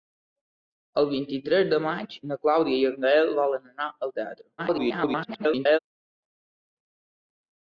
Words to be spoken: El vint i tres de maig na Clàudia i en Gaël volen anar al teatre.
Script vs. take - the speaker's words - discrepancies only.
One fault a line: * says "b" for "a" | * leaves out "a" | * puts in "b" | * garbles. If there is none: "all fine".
* garbles